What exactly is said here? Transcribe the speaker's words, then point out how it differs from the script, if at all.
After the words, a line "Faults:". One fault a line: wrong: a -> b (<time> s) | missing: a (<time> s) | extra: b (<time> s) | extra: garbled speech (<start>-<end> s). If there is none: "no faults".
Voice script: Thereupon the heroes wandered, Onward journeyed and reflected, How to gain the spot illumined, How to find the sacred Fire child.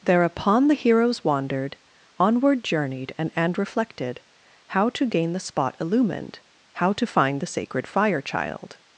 Thereupon the heroes wandered, Onward journeyed and and reflected, How to gain the spot illumined, How to find the sacred Fire child.
Faults:
extra: and (3.3 s)